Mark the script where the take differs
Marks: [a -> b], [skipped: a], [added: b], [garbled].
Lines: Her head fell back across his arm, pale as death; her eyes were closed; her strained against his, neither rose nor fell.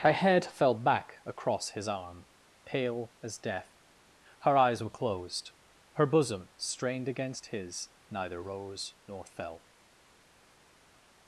Her head fell back across his arm, pale as death; her eyes were closed; her [added: bosom] strained against his, neither rose nor fell.